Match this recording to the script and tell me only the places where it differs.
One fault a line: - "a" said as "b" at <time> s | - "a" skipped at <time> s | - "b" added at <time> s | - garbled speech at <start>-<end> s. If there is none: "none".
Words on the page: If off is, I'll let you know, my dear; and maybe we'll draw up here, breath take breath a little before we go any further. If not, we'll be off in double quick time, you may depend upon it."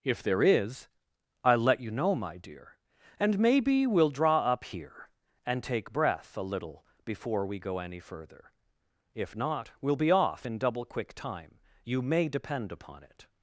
- "off" said as "there" at 0.2 s
- "breath" said as "and" at 5.5 s